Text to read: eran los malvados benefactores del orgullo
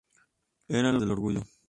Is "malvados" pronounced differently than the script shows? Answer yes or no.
yes